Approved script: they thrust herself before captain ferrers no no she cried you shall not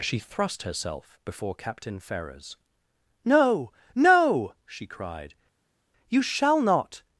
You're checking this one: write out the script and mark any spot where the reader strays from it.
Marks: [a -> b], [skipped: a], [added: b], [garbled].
[they -> she] thrust herself before captain ferrers no no she cried you shall not